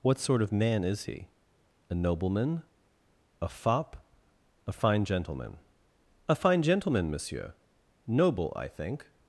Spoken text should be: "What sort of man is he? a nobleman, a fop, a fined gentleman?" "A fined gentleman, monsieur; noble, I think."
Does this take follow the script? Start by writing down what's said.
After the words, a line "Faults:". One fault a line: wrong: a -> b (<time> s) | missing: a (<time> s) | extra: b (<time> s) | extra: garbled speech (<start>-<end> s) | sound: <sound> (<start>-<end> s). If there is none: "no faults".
"What sort of man is he? a nobleman, a fop, a fine gentleman?" "A fine gentleman, monsieur; noble, I think."
Faults:
wrong: fined -> fine (4.7 s)
wrong: fined -> fine (6.4 s)